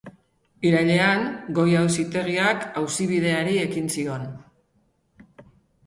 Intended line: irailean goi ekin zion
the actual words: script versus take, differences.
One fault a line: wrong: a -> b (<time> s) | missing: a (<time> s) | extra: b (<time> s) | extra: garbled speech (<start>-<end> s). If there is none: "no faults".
extra: auzitegiak auzibideari (1.8 s)